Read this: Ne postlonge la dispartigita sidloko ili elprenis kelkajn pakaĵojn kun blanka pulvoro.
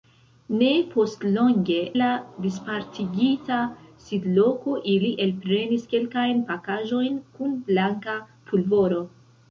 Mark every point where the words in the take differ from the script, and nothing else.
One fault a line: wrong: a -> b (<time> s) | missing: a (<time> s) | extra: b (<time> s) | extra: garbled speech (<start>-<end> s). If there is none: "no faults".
no faults